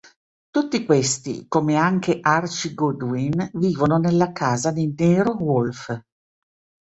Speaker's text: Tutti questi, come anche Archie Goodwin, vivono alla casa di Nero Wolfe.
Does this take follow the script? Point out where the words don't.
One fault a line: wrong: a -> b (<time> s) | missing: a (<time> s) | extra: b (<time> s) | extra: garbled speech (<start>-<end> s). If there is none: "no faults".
wrong: alla -> nella (4.0 s)